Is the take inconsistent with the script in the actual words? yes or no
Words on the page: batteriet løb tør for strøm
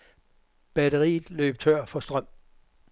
no